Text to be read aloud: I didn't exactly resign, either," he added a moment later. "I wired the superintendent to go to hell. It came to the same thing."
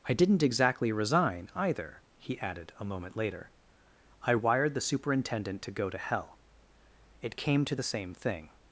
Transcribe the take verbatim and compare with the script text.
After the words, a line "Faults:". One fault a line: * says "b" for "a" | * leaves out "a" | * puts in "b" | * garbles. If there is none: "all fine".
I didn't exactly resign, either," he added a moment later. "I wired the superintendent to go to hell. It came to the same thing."
Faults:
all fine